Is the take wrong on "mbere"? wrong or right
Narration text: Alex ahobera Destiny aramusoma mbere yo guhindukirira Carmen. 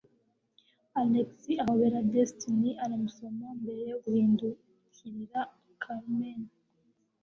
right